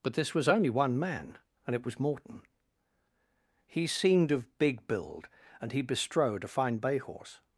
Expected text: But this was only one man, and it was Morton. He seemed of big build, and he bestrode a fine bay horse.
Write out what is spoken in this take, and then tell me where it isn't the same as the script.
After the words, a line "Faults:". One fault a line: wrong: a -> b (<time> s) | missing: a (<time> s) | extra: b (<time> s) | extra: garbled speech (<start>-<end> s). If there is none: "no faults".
But this was only one man, and it was Morton. He seemed of big build, and he bestrode a fine bay horse.
Faults:
no faults